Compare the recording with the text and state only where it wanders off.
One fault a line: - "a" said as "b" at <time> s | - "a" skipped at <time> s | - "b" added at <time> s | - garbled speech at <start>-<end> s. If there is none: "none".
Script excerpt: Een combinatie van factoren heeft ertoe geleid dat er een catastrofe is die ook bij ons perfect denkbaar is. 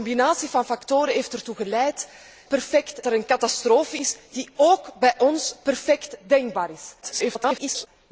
- "dat" said as "perfect" at 2.5 s
- garbled speech at 7.0-7.9 s